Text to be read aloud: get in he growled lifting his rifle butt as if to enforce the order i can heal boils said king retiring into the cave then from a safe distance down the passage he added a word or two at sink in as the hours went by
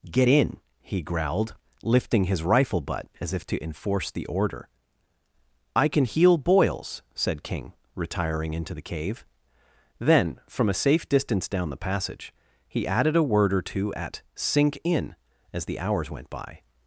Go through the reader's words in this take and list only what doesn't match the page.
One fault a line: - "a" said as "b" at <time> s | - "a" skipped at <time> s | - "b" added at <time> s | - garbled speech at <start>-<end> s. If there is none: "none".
none